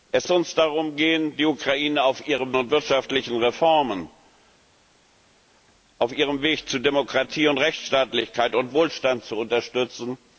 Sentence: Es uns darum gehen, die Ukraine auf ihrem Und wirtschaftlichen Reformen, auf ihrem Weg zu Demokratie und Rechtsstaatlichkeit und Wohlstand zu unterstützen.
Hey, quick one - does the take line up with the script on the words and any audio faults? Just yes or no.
yes